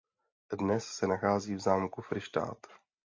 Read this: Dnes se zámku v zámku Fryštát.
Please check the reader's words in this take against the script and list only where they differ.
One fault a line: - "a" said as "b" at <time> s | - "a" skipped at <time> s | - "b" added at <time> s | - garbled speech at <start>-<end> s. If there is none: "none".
- "zámku" said as "nachází" at 1.1 s